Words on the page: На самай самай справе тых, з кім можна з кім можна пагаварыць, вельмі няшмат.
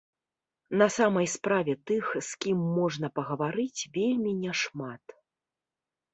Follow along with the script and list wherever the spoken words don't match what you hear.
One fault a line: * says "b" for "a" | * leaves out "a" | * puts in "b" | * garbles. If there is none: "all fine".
* leaves out "самай"
* leaves out "з кім можна"